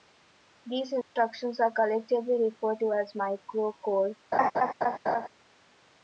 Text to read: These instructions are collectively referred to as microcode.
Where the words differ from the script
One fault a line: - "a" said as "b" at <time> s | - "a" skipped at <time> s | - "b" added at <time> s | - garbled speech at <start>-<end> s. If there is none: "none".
none